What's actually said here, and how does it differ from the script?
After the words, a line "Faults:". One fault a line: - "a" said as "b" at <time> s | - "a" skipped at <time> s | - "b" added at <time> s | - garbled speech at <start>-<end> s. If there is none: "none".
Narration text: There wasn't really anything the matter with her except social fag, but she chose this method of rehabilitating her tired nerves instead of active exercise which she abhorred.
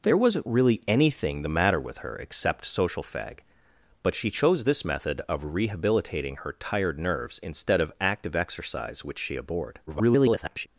There wasn't really anything the matter with her except social fag, but she chose this method of rehabilitating her tired nerves instead of active exercise which she abhorred. [garbled]
Faults:
- garbled speech at 9.9-10.7 s